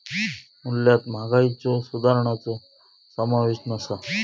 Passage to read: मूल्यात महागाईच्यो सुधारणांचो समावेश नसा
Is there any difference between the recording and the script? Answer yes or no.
no